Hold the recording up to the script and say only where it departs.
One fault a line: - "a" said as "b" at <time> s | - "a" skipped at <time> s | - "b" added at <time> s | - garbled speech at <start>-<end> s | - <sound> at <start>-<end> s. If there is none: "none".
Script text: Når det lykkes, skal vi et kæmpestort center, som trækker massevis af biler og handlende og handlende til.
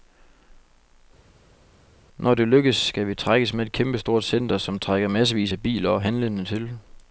- "trækkes med" added at 3.1 s
- "og handlende" skipped at 6.4 s